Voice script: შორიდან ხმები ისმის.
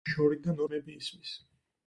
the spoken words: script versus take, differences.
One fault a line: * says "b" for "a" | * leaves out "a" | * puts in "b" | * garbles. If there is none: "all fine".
all fine